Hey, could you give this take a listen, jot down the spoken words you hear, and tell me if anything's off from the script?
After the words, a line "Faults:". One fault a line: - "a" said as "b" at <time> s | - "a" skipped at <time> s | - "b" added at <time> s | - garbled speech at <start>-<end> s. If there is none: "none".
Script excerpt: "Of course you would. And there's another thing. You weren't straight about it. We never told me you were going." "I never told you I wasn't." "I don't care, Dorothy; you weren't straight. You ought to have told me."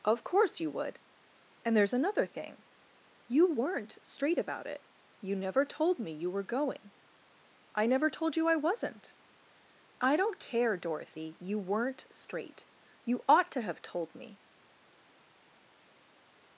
"Of course you would. And there's another thing. You weren't straight about it. You never told me you were going." "I never told you I wasn't." "I don't care, Dorothy; you weren't straight. You ought to have told me."
Faults:
- "We" said as "You" at 5.2 s